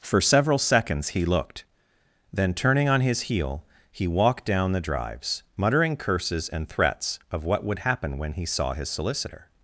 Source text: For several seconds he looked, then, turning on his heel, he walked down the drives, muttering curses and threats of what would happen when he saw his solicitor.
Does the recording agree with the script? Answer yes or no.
yes